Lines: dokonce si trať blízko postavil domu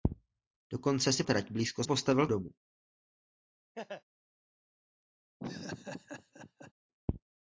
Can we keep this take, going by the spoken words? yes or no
yes